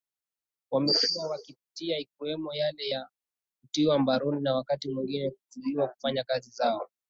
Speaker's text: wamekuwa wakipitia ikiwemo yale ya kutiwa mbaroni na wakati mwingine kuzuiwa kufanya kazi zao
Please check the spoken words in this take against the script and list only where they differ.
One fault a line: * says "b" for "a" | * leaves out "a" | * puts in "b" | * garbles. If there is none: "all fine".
all fine